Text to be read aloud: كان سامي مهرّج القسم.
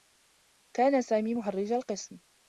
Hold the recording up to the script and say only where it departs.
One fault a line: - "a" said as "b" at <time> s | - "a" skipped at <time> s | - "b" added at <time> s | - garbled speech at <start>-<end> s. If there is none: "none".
none